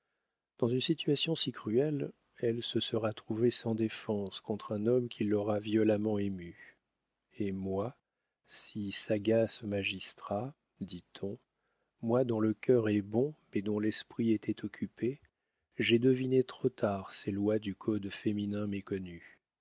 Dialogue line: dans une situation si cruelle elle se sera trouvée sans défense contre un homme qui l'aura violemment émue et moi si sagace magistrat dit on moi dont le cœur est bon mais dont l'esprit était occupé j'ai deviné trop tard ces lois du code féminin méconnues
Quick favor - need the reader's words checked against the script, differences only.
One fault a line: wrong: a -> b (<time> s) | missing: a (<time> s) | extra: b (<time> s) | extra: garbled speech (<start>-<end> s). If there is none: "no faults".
no faults